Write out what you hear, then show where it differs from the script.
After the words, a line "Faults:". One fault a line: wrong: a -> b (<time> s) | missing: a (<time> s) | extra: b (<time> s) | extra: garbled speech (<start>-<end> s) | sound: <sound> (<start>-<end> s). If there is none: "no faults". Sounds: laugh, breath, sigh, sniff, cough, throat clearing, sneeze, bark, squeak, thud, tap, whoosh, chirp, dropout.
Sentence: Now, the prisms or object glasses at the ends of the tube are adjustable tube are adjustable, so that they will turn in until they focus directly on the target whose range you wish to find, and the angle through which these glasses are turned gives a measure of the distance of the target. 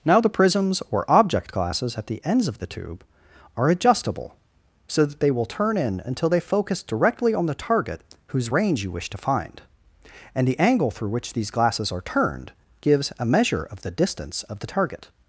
Now, the prisms or object glasses at the ends of the tube are adjustable, so that they will turn in until they focus directly on the target whose range you wish to find, and the angle through which these glasses are turned gives a measure of the distance of the target.
Faults:
missing: tube are adjustable (4.3 s)